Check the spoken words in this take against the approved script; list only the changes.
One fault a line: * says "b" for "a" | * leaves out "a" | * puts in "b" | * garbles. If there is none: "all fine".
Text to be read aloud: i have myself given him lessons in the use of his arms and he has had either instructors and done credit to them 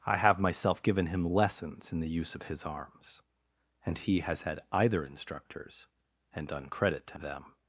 all fine